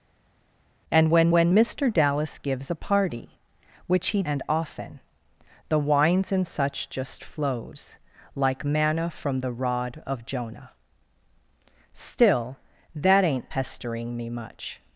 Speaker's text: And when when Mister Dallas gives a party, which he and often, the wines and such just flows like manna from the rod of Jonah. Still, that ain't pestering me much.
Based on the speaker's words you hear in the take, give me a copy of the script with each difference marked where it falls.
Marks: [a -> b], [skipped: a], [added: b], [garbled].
And when when Mister Dallas gives a party, which he and often, the wines and such just flows like manna from the rod of Jonah. Still, that ain't pestering me much.